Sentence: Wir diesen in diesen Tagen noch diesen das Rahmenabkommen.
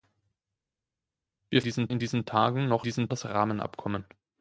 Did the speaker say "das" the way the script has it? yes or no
yes